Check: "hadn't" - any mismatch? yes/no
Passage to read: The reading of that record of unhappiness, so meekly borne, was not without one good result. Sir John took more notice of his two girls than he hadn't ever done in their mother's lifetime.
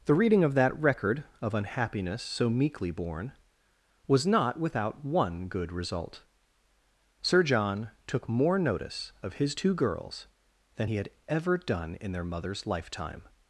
yes